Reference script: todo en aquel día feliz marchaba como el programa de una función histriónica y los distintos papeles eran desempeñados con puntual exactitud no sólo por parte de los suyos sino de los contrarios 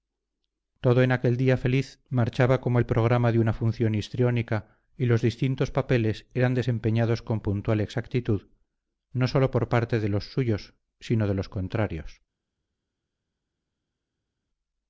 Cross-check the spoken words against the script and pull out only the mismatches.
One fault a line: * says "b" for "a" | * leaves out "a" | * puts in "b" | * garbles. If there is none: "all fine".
all fine